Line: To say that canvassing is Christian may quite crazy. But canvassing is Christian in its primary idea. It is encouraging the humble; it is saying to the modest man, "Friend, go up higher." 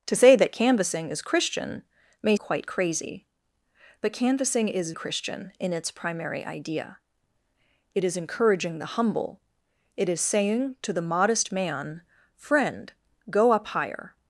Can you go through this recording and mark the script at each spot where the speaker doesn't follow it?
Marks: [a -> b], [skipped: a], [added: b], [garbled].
To say that canvassing is Christian may quite crazy. But canvassing is Christian in its primary idea. It is encouraging the humble; it is saying to the modest man, "Friend, go up higher."